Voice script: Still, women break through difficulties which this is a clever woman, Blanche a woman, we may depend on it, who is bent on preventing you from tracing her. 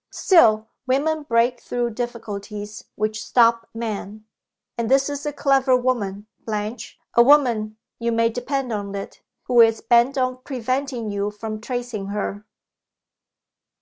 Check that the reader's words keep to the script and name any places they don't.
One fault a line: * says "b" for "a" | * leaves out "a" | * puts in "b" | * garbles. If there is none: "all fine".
* puts in "stop men And"
* says "you" for "we"